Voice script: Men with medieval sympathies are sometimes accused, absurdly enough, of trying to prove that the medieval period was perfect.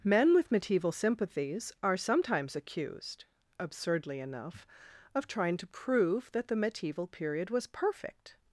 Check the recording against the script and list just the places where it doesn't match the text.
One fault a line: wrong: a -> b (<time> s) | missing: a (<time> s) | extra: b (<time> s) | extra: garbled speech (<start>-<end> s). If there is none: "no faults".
no faults